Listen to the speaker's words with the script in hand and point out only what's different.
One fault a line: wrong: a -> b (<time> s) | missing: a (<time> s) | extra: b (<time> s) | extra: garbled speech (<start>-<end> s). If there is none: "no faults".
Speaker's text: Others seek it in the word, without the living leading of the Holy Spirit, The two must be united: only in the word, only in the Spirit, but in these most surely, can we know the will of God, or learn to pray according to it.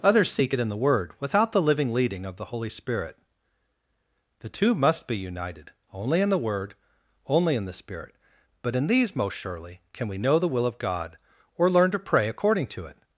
no faults